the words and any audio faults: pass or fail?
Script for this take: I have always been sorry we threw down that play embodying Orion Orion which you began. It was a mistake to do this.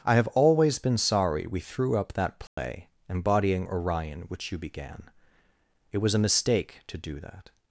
fail